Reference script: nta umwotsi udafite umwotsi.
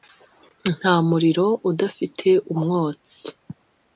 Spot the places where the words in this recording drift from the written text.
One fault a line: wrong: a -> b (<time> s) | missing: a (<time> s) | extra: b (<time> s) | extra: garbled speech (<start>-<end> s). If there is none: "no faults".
wrong: umwotsi -> muriro (1.1 s)